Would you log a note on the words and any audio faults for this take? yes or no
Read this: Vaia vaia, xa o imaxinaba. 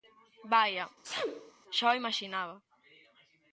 yes